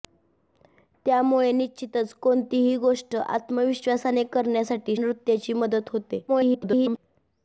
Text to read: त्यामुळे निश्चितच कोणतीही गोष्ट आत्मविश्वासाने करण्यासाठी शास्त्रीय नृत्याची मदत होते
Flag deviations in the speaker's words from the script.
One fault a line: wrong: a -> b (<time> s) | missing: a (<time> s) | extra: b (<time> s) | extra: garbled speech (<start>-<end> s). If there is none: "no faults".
missing: शास्त्रीय (5.0 s)
extra: garbled speech (6.3-7.0 s)